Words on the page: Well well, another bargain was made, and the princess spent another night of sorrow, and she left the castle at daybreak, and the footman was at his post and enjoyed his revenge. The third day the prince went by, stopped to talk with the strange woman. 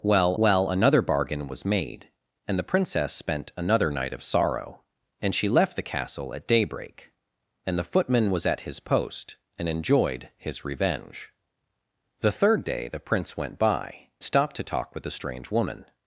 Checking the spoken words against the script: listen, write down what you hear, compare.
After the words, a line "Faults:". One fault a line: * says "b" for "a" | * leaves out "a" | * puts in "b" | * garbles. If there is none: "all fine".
Well well, another bargain was made, and the princess spent another night of sorrow, and she left the castle at daybreak, and the footman was at his post and enjoyed his revenge. The third day the prince went by, stopped to talk with the strange woman.
Faults:
all fine